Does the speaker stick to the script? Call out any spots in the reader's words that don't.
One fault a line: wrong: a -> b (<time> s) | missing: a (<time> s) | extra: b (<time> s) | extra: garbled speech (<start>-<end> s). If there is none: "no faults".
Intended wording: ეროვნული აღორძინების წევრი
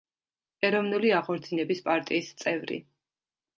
extra: პარტიის (1.9 s)